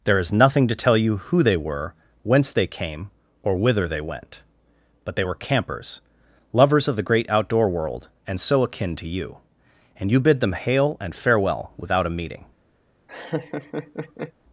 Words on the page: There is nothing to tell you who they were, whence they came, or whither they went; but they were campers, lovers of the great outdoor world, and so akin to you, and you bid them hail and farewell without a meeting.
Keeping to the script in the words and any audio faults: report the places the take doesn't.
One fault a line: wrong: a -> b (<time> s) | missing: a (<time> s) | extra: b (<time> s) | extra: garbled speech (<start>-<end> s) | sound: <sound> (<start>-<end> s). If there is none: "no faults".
sound: laugh (13.1-14.3 s)